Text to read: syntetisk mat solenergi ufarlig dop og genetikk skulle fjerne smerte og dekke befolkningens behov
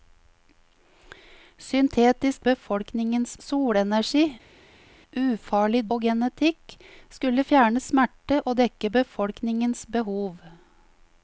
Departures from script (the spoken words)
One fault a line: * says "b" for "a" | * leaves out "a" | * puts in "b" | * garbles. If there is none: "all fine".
* says "befolkningens" for "mat"
* leaves out "dop"